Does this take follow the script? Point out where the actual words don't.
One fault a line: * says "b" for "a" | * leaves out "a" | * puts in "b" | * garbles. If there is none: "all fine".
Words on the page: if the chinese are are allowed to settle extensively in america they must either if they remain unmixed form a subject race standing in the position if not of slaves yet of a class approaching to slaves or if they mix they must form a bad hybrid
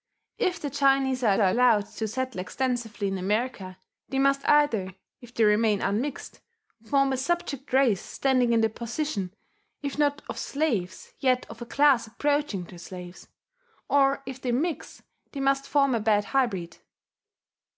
all fine